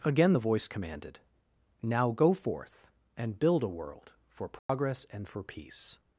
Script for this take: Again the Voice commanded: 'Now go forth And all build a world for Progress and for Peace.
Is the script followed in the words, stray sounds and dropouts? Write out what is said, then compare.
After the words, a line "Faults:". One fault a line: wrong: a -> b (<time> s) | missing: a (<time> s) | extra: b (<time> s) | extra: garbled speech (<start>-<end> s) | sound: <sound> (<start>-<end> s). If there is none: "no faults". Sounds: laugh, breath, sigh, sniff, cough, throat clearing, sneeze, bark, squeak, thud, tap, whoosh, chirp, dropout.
Again the Voice commanded: 'Now go forth And build a world for Progress and for Peace.
Faults:
missing: all (3.4 s)
sound: dropout (4.6-4.7 s)